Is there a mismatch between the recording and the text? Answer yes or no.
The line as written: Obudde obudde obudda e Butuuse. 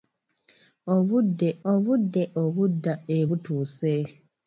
no